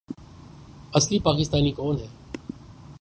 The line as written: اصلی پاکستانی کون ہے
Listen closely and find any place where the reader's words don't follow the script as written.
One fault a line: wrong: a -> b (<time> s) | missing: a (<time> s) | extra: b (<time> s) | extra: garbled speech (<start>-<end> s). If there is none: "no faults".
no faults